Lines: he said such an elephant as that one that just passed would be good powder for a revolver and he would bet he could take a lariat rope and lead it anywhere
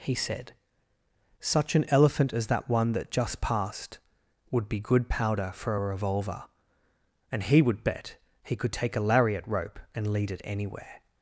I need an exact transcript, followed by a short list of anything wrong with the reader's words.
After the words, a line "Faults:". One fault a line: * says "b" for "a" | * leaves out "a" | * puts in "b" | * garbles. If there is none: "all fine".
he said such an elephant as that one that just passed would be good powder for a revolver and he would bet he could take a lariat rope and lead it anywhere
Faults:
all fine